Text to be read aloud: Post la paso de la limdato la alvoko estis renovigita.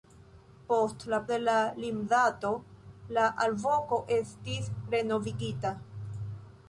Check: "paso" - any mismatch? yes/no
yes